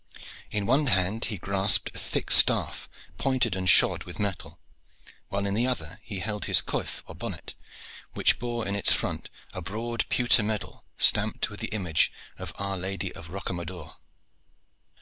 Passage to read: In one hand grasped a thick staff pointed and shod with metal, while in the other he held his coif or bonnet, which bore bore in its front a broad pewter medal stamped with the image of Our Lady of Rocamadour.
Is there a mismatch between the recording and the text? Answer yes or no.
yes